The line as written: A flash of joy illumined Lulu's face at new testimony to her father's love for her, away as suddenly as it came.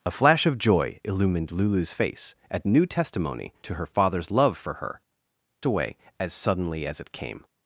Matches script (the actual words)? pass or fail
pass